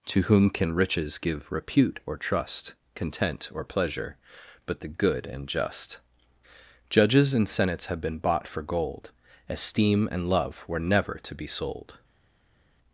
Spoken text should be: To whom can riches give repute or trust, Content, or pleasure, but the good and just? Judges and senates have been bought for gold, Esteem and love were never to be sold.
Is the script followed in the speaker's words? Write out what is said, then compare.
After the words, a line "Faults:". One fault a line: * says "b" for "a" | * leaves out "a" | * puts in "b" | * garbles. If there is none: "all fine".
To whom can riches give repute or trust, Content, or pleasure, but the good and just? Judges and senates have been bought for gold, Esteem and love were never to be sold.
Faults:
all fine